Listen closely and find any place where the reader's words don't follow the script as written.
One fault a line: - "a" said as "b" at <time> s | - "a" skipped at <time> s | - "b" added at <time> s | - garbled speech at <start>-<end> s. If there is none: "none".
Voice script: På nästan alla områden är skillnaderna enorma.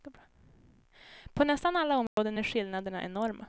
none